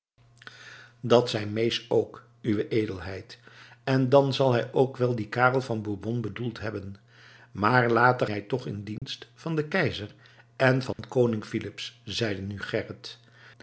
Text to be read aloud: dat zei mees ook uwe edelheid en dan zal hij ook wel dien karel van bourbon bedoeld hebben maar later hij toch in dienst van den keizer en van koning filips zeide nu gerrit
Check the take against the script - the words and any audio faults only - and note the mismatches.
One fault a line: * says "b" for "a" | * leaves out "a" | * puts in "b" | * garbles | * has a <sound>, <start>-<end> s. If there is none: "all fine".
* has a dropout, 9.0-9.0 s
* has a dropout, 10.9-11.0 s